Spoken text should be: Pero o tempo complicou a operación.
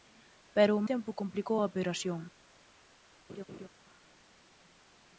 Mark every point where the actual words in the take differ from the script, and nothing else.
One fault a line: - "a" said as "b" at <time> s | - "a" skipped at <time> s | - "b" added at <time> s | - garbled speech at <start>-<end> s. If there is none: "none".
none